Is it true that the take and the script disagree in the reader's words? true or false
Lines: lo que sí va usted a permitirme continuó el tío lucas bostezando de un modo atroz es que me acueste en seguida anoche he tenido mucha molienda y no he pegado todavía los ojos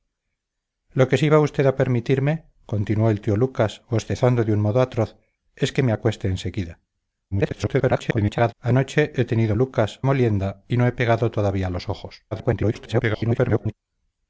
true